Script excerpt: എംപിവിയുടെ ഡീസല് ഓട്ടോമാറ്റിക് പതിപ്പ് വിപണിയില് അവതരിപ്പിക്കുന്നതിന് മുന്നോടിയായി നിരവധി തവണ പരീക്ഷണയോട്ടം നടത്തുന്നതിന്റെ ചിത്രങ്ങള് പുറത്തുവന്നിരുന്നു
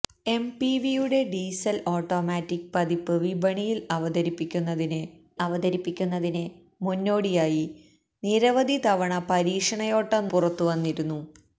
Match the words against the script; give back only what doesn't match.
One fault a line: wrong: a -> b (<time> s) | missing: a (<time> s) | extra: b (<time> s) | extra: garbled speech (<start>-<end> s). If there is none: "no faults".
extra: അവതരിപ്പിക്കുന്നതിന് (5.4 s)
missing: നടത്തുന്നതിന്റെ ചിത്രങ്ങള് (10.3 s)